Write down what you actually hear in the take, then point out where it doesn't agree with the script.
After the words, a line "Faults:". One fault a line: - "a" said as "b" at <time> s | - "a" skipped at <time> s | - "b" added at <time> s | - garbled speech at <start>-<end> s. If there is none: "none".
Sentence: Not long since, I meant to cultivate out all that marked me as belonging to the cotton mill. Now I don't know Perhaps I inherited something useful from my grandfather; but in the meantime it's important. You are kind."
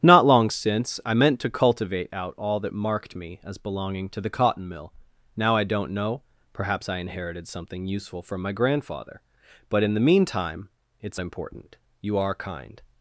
Not long since, I meant to cultivate out all that marked me as belonging to the cotton mill. Now I don't know Perhaps I inherited something useful from my grandfather; but in the meantime it's important. You are kind."
Faults:
none